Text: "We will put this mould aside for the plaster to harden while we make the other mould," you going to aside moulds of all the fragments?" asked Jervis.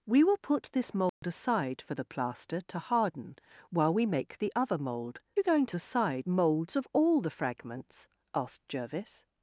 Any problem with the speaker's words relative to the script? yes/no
no